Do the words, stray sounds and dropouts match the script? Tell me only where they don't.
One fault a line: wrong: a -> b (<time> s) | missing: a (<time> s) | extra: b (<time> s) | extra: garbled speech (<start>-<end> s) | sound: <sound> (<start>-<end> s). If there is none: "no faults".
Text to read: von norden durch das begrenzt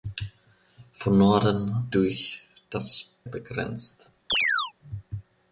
sound: chirp (4.3-4.7 s)